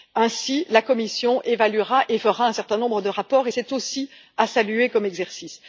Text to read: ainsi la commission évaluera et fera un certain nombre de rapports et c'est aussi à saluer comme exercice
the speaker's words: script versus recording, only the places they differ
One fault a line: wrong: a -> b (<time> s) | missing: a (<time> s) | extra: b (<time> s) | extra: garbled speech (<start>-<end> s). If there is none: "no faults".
no faults